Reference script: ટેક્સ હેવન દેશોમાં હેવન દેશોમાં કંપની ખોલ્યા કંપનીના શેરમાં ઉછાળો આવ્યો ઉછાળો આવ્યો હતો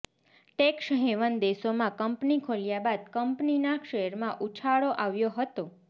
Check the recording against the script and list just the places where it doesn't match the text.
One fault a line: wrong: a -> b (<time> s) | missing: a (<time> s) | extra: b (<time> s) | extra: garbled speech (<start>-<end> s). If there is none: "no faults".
missing: હેવન દેશોમાં (1.9 s)
extra: બાદ (2.9 s)
missing: ઉછાળો આવ્યો (5.4 s)